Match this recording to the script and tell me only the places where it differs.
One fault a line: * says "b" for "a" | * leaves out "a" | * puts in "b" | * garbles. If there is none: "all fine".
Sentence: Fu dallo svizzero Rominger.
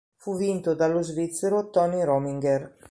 * puts in "vinto"
* puts in "Tony"